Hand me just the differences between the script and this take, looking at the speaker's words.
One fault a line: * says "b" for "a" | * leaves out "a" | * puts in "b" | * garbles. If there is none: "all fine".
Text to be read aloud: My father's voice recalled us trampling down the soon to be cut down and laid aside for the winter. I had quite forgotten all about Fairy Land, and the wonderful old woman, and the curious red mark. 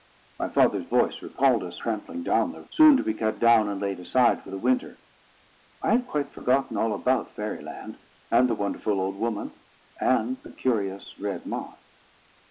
all fine